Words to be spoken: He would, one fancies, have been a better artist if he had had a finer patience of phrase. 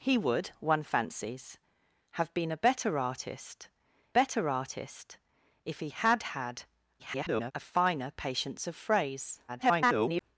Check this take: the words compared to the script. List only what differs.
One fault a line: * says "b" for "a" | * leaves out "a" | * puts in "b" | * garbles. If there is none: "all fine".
* puts in "better artist"
* garbles
* garbles